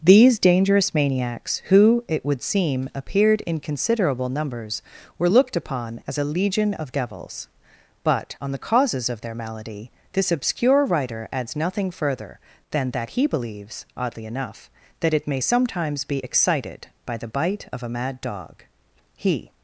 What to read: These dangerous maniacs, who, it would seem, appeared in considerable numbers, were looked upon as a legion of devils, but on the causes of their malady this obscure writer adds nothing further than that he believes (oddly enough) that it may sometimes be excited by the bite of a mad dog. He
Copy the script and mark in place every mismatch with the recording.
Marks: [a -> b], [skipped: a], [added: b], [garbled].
These dangerous maniacs, who, it would seem, appeared in considerable numbers, were looked upon as a legion of devils, but on the causes of their malady this obscure writer adds nothing further than that he believes (oddly enough) that it may sometimes be excited by the bite of a mad dog. He